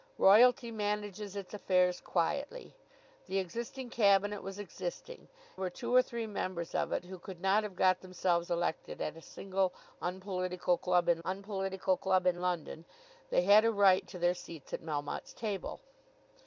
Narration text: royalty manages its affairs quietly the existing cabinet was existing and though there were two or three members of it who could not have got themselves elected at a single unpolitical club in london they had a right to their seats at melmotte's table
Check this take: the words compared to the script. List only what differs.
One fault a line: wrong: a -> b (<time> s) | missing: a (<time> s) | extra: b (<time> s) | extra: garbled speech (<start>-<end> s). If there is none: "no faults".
missing: and though there (5.3 s)
extra: unpolitical club in (11.2 s)